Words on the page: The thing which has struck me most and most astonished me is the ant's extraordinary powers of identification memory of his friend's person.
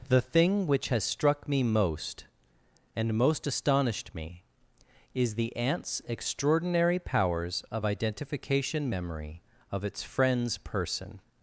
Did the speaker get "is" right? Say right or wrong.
right